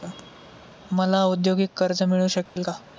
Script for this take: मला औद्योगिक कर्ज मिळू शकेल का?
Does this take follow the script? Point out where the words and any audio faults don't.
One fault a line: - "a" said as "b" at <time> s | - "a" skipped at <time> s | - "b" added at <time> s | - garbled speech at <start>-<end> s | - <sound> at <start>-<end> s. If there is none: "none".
- dropout at 2.5-2.6 s